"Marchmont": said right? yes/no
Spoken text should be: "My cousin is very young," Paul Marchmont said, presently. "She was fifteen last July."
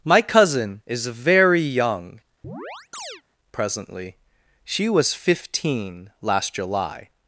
no